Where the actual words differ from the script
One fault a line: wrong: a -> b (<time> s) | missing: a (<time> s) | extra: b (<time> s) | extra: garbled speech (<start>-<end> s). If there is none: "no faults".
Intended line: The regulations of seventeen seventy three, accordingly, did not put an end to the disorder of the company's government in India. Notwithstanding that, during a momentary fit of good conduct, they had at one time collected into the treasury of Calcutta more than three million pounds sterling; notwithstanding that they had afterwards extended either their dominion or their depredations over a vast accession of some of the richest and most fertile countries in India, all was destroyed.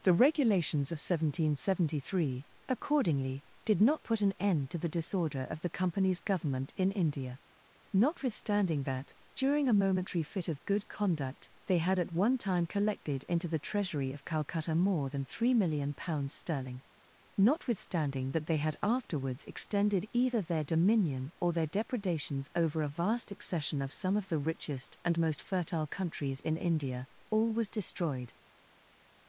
no faults